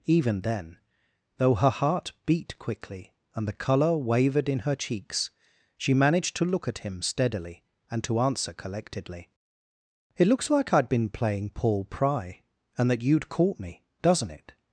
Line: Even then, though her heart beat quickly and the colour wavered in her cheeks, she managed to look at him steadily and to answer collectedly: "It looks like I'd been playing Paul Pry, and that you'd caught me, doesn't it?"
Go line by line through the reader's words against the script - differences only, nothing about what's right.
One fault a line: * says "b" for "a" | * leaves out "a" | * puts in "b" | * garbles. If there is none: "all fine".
all fine